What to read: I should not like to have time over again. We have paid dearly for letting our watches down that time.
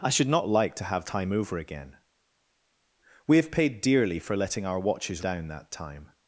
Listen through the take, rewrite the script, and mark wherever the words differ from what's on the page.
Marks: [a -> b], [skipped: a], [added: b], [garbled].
I should not like to have time over again. We have paid dearly for letting our watches down that time.